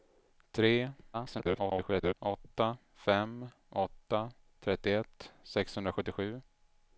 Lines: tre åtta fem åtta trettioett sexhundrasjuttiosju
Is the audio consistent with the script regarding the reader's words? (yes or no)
no